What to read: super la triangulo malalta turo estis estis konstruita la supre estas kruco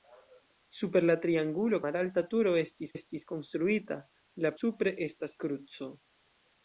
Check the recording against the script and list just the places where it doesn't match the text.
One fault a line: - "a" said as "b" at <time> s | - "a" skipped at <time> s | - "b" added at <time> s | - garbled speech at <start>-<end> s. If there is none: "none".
none